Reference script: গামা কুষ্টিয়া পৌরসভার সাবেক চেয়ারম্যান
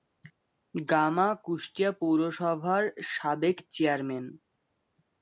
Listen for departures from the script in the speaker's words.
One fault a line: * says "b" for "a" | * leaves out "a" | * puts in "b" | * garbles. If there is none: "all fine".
all fine